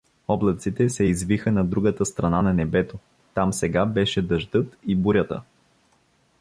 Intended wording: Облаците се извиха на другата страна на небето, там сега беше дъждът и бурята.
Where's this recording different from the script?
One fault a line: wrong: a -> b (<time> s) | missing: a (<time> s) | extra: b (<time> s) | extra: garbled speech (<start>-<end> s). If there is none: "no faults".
no faults